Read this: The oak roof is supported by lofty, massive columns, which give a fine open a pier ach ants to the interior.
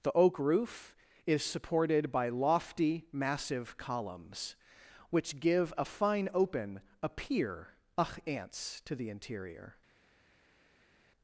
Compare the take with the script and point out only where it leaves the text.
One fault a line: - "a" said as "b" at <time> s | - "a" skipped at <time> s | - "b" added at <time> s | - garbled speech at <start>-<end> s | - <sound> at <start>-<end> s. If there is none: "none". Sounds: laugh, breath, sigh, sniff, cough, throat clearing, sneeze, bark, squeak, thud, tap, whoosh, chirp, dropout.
none